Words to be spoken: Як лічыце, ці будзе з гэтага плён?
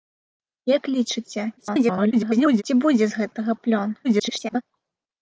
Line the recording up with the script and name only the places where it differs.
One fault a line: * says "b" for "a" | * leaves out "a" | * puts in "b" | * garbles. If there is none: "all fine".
* garbles
* garbles